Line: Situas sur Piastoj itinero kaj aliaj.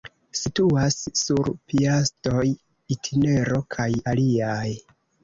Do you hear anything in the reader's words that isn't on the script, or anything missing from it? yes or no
no